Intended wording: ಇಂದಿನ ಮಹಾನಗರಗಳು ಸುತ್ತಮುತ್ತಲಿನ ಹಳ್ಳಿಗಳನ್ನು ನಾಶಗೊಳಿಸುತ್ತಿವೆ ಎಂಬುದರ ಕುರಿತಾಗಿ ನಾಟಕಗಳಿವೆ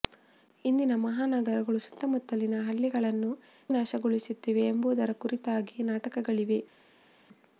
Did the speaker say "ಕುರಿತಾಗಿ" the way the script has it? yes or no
yes